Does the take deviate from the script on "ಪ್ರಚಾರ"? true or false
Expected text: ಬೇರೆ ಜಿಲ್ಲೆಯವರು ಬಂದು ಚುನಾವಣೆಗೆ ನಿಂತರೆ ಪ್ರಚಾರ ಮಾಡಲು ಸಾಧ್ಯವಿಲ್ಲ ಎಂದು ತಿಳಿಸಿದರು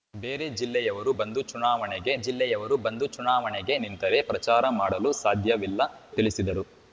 false